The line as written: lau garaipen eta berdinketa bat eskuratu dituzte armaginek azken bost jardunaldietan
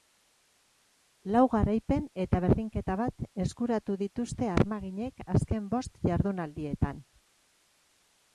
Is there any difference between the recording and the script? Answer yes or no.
no